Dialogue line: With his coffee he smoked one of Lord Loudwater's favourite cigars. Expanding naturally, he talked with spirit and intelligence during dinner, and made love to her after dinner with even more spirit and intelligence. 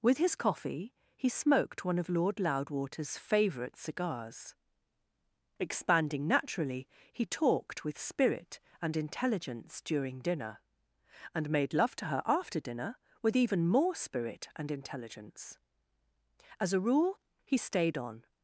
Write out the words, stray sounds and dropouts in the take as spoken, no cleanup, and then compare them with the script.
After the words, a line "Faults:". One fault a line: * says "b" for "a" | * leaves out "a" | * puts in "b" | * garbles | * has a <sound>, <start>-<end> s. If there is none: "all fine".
With his coffee he smoked one of Lord Loudwater's favourite cigars. Expanding naturally, he talked with spirit and intelligence during dinner, and made love to her after dinner with even more spirit and intelligence. As a rule, he stayed on
Faults:
* puts in "As a rule he stayed on"